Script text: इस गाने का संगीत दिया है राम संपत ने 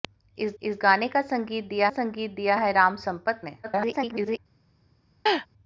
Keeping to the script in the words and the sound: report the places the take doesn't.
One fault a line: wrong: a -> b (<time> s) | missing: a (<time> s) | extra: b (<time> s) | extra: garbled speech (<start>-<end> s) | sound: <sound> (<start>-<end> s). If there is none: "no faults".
extra: इस (0.6 s)
extra: संगीत दिया (1.9 s)
extra: garbled speech (3.6-4.4 s)
sound: laugh (5.3-5.5 s)